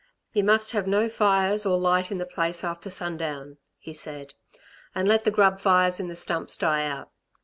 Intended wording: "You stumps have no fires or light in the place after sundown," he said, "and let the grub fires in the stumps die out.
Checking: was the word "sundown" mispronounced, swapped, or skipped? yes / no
no